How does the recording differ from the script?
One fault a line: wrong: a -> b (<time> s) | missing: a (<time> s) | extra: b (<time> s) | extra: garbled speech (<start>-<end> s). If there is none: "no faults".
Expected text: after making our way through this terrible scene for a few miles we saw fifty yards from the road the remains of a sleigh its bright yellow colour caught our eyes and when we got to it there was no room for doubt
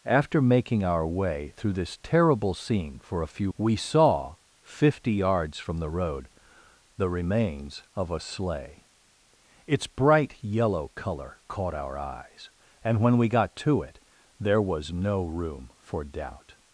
missing: miles (3.5 s)